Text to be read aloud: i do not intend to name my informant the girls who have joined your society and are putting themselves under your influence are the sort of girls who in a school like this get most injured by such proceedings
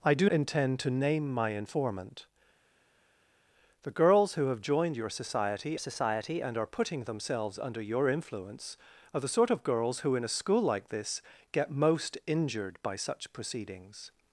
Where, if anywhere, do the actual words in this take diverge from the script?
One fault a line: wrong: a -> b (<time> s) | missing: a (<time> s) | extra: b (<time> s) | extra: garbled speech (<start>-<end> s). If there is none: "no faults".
missing: not (0.3 s)
extra: society (5.8 s)